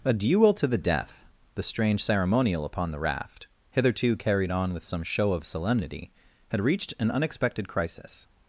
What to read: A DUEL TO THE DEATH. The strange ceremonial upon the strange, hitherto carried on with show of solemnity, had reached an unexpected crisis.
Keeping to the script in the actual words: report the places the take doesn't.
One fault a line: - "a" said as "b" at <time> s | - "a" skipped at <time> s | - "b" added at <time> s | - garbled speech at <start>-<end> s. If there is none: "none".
- "strange" said as "raft" at 3.0 s
- "some" added at 4.8 s